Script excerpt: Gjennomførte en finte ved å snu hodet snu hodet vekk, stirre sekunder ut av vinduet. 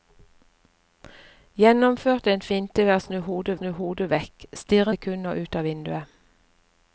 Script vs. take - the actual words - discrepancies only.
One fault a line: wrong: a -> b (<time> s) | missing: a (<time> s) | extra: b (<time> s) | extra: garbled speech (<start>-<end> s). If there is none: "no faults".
no faults